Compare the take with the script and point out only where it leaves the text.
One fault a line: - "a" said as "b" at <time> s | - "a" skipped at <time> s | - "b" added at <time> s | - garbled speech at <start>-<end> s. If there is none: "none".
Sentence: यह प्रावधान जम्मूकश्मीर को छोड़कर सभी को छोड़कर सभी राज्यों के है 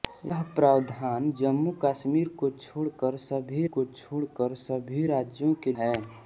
none